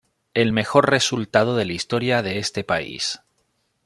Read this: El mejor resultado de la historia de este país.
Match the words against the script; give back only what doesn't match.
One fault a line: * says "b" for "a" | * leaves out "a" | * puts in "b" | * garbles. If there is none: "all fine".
all fine